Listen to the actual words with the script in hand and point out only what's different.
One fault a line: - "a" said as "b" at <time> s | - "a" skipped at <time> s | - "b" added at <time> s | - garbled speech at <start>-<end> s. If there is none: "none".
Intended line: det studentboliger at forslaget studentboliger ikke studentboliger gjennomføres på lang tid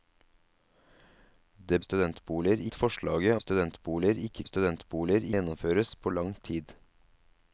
none